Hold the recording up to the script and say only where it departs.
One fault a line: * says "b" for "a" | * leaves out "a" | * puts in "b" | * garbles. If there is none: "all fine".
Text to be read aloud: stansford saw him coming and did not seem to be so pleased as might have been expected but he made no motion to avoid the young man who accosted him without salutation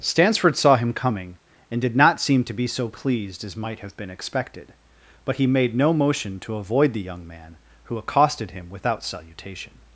all fine